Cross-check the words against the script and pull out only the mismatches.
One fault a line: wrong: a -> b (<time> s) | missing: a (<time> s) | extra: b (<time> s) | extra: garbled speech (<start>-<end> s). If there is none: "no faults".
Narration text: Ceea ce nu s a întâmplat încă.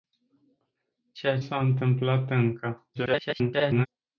missing: ce nu (1.4 s)
extra: garbled speech (2.9-3.9 s)